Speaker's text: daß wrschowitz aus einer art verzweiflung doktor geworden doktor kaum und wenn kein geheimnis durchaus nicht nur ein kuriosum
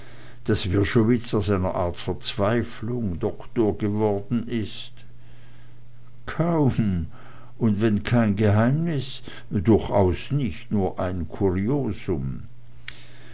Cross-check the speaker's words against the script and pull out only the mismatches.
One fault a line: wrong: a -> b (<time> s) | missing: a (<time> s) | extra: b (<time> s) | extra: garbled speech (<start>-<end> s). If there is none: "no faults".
wrong: doktor -> ist (4.5 s)